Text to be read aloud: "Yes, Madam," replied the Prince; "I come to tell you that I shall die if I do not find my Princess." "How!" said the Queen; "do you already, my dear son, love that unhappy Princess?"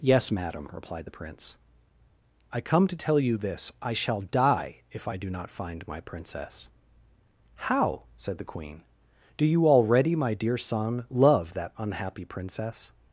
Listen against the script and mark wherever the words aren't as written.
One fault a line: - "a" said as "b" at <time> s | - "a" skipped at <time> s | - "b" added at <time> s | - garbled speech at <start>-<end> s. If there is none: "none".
- "that" said as "this" at 3.4 s